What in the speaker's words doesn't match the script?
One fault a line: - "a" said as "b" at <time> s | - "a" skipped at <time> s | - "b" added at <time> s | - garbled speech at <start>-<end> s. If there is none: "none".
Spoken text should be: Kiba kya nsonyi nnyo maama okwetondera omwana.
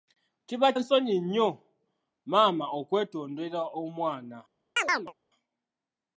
- "kya" skipped at 0.7 s